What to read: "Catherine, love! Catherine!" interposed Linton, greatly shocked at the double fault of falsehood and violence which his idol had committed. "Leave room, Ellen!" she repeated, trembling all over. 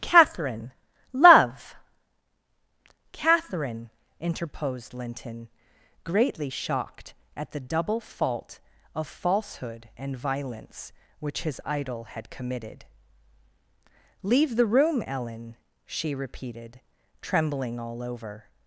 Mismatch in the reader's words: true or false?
true